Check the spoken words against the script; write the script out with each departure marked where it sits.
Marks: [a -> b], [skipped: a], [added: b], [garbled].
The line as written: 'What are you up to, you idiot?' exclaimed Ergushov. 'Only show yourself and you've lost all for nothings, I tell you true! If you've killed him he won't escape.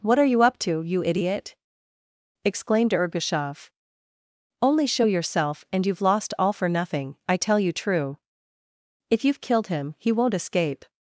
'What are you up to, you idiot?' exclaimed Ergushov. 'Only show yourself and you've lost all for [nothings, -> nothing] I tell you true! If you've killed him he won't escape.